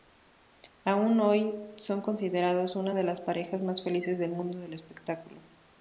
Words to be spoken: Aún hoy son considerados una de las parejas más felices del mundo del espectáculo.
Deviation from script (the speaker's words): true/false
false